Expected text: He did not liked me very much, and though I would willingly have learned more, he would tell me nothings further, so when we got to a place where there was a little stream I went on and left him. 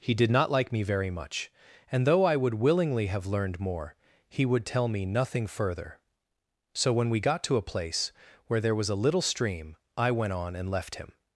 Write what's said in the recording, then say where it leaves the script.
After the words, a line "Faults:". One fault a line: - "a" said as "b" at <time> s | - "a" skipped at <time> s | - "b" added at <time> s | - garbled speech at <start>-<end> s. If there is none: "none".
He did not like me very much, and though I would willingly have learned more, he would tell me nothing further, so when we got to a place where there was a little stream I went on and left him.
Faults:
- "liked" said as "like" at 0.5 s
- "nothings" said as "nothing" at 5.0 s